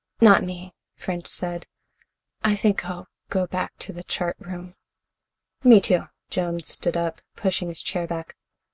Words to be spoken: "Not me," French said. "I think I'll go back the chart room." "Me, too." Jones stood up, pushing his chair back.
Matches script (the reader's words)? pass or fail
fail